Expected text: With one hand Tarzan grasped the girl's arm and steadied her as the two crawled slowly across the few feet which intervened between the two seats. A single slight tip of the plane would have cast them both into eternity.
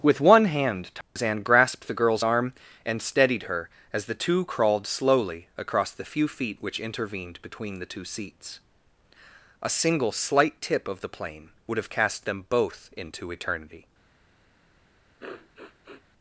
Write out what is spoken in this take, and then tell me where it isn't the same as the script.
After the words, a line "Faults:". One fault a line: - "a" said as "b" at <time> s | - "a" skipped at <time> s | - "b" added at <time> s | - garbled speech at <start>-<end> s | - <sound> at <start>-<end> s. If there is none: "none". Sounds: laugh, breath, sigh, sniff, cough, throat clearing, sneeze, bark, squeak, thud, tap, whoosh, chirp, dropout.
With one hand Tarzan grasped the girl's arm and steadied her as the two crawled slowly across the few feet which intervened between the two seats. A single slight tip of the plane would have cast them both into eternity.
Faults:
- dropout at 1.0-1.2 s
- sniff at 15.2-16.0 s